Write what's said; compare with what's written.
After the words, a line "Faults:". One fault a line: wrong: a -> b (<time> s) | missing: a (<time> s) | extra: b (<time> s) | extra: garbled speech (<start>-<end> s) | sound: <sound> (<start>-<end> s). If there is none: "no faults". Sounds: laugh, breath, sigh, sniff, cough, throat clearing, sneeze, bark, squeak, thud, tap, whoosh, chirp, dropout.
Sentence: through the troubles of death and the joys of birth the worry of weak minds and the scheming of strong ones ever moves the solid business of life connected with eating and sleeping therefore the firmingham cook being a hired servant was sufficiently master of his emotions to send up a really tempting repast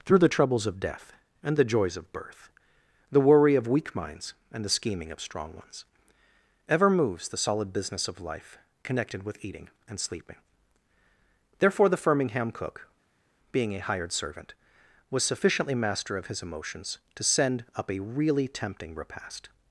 through the troubles of death and the joys of birth the worry of weak minds and the scheming of strong ones ever moves the solid business of life connected with eating and sleeping therefore the firmingham cook being a hired servant was sufficiently master of his emotions to send up a really tempting repast
Faults:
no faults